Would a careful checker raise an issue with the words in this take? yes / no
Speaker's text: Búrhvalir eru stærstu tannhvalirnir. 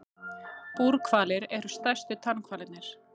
no